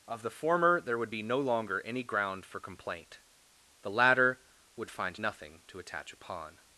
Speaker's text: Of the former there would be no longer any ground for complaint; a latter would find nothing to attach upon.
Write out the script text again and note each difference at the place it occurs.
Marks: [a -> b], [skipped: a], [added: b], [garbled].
Of the former there would be no longer any ground for complaint; [a -> the] latter would find nothing to attach upon.